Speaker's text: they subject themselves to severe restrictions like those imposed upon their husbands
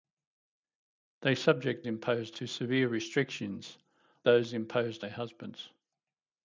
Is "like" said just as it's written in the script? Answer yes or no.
no